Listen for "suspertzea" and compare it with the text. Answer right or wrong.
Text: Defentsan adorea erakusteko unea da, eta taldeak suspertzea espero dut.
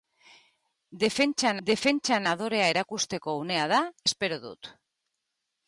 wrong